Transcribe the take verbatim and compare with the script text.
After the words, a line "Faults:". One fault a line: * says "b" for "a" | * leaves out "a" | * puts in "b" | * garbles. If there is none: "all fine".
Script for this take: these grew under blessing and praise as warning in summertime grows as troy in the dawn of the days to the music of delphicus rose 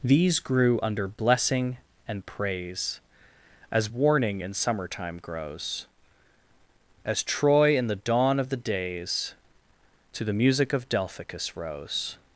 these grew under blessing and praise as warning in summertime grows as troy in the dawn of the days to the music of delphicus rose
Faults:
all fine